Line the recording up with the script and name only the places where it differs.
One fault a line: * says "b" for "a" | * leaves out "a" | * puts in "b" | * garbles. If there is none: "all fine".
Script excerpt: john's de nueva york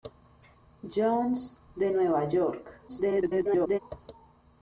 * garbles